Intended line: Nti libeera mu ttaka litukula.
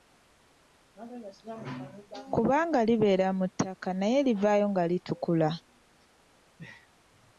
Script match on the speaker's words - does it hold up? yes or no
no